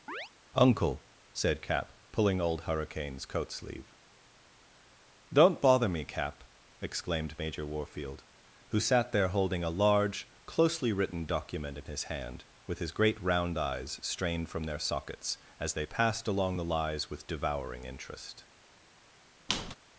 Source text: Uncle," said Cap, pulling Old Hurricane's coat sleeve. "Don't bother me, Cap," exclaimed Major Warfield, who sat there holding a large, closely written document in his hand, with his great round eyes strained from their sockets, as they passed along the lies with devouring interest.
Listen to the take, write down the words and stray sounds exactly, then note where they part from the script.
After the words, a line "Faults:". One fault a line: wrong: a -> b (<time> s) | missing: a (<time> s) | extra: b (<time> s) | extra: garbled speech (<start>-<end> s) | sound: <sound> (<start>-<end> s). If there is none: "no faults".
Uncle," said Cap, pulling Old Hurricane's coat sleeve. "Don't bother me, Cap," exclaimed Major Warfield, who sat there holding a large, closely written document in his hand, with his great round eyes strained from their sockets, as they passed along the lies with devouring interest.
Faults:
sound: chirp (0.1-0.3 s)
sound: squeak (19.5-19.7 s)